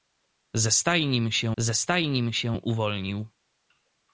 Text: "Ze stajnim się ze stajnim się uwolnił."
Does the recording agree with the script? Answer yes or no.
yes